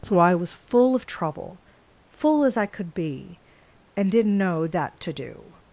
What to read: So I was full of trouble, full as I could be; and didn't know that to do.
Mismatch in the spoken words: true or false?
false